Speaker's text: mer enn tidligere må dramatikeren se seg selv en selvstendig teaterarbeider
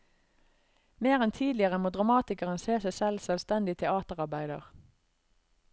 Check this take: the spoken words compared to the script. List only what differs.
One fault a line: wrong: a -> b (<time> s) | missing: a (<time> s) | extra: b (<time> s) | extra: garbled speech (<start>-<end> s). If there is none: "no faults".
no faults